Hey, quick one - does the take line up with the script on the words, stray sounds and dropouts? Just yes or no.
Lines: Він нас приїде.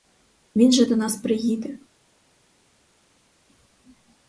no